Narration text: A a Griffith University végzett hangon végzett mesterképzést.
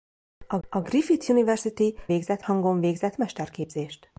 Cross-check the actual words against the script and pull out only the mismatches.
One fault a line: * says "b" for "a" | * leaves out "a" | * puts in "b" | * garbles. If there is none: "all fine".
all fine